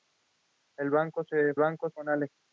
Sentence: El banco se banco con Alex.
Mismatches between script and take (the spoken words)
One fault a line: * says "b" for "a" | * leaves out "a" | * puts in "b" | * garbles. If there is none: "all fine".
all fine